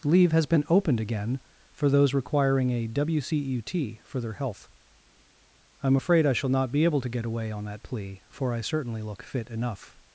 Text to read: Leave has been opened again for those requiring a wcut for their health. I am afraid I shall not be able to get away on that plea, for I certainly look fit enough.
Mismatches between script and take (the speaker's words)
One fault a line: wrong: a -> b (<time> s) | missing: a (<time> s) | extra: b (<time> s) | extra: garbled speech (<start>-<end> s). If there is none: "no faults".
no faults